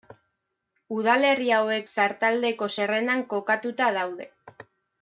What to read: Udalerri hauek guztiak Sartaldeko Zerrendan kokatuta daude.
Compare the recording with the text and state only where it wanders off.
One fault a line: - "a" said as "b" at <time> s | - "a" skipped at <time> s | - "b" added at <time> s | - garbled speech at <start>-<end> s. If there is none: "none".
- "guztiak" skipped at 1.9 s